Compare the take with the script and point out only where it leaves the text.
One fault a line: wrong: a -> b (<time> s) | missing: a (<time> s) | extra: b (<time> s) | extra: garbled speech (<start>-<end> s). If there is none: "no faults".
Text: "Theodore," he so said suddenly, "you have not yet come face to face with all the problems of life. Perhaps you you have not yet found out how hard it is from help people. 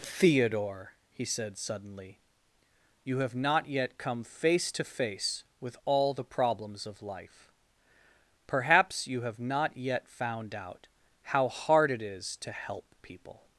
missing: so (1.2 s)
missing: you (9.2 s)
wrong: from -> to (12.4 s)